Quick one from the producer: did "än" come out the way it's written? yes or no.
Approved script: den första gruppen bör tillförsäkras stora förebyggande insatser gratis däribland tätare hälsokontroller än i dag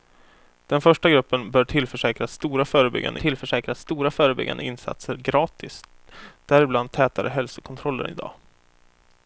no